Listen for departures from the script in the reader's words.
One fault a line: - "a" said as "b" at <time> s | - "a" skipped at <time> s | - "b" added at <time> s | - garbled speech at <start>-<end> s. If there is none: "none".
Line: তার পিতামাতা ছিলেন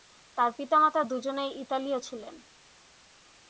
- "দুজনেই ইতালীয়" added at 1.0 s